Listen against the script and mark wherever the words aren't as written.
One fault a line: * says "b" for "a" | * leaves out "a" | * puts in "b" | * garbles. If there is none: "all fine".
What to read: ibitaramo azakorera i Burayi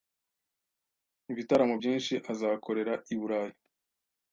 * puts in "byinshi"